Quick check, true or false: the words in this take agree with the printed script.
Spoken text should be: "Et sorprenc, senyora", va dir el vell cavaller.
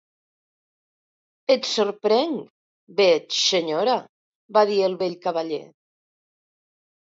false